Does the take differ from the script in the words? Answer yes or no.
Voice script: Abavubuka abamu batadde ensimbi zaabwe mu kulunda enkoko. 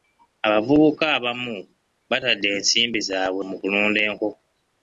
no